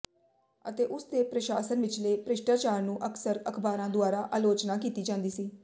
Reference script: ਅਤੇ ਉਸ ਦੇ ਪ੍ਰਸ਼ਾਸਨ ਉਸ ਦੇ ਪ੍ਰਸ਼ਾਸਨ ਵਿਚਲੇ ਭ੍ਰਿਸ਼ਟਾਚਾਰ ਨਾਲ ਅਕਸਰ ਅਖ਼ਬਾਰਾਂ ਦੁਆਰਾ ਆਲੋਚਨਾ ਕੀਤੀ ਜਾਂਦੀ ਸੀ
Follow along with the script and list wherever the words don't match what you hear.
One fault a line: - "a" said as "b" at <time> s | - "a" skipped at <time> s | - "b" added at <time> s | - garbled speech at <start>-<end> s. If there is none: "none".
- "ਉਸ ਦੇ ਪ੍ਰਸ਼ਾਸਨ" skipped at 1.8 s
- "ਨਾਲ" said as "ਨੂੰ" at 2.8 s